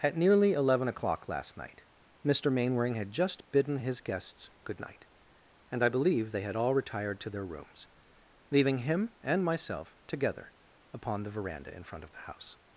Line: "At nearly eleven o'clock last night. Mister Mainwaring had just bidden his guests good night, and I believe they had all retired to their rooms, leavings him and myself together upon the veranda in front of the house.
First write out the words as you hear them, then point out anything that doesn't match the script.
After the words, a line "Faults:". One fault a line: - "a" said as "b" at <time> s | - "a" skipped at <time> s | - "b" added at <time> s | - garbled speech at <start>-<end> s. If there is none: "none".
"At nearly eleven o'clock last night. Mister Mainwaring had just bidden his guests good night, and I believe they had all retired to their rooms, leaving him and myself together upon the veranda in front of the house.
Faults:
- "leavings" said as "leaving" at 8.5 s